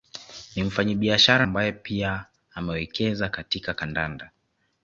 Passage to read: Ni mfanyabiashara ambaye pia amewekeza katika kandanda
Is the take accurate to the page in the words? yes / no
yes